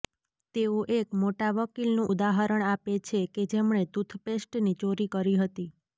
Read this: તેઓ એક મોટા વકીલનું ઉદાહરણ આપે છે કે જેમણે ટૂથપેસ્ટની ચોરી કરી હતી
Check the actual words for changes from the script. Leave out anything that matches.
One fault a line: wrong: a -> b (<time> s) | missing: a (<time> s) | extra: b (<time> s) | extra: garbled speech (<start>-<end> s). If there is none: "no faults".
no faults